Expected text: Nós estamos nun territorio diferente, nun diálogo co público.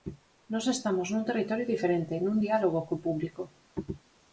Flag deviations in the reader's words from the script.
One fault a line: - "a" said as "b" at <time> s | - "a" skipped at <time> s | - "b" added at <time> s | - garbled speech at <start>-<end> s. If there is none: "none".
none